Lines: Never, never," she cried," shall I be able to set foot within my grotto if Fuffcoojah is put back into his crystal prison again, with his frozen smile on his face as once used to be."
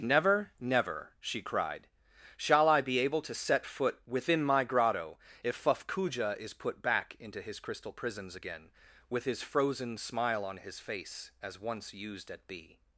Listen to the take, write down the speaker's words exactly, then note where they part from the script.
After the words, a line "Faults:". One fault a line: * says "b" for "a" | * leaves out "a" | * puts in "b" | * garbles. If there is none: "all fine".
Never, never," she cried," shall I be able to set foot within my grotto if Fuffcoojah is put back into his crystal prisons again, with his frozen smile on his face as once used at be."
Faults:
* says "prisons" for "prison"
* says "at" for "to"